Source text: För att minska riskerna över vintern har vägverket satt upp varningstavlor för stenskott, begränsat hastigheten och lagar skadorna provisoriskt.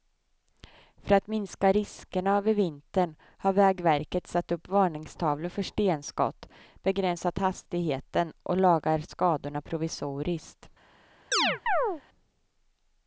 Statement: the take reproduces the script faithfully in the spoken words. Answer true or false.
true